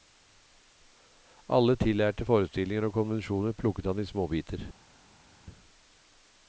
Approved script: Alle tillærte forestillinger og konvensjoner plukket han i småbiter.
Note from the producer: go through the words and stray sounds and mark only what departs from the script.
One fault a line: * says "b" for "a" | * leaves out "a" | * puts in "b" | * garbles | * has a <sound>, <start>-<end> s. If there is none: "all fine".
all fine